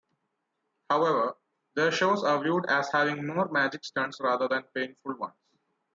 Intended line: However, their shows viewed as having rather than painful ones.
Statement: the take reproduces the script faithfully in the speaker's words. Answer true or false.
false